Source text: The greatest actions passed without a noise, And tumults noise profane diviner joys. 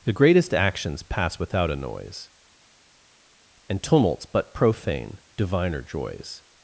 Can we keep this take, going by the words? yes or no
no